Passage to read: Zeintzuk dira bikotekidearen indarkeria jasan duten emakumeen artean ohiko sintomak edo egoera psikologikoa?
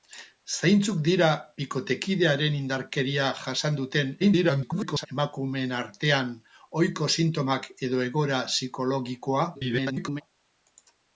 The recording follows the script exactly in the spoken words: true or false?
false